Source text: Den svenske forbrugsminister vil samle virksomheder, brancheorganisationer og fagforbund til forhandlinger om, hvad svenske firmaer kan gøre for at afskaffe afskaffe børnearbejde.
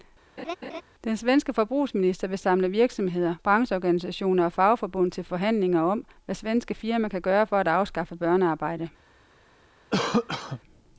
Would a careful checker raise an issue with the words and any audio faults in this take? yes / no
yes